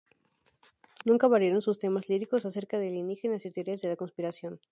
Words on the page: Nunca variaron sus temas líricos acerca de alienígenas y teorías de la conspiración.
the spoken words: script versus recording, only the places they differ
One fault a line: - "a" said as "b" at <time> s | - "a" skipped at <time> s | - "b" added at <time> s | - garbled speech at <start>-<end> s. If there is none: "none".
none